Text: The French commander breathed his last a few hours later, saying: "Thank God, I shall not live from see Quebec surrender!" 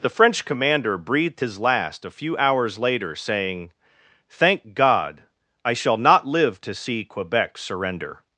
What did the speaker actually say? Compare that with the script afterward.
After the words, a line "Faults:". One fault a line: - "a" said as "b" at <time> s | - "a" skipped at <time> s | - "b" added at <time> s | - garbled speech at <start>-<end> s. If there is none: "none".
The French commander breathed his last a few hours later, saying: "Thank God, I shall not live to see Quebec surrender!"
Faults:
- "from" said as "to" at 6.6 s